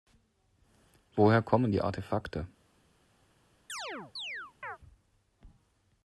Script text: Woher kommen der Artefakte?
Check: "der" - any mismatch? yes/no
yes